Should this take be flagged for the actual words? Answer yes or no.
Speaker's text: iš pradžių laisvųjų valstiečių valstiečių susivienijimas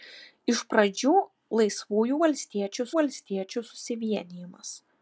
no